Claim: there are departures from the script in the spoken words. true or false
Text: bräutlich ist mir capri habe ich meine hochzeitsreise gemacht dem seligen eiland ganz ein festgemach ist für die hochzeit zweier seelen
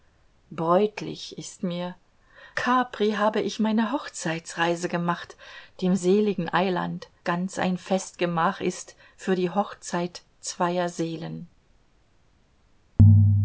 false